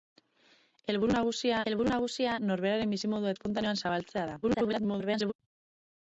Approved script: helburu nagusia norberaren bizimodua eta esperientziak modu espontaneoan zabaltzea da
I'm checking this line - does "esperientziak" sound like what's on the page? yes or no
no